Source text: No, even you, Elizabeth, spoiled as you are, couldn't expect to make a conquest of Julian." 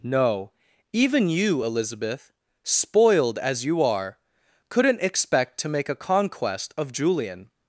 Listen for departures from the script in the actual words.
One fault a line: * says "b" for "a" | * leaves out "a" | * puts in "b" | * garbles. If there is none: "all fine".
all fine